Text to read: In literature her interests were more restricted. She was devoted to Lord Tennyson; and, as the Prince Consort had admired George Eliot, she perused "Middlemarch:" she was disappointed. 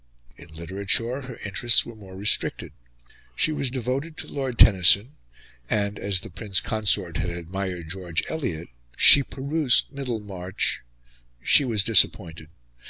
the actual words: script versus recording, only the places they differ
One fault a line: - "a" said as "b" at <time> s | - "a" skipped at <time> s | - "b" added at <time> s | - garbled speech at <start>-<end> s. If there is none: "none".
none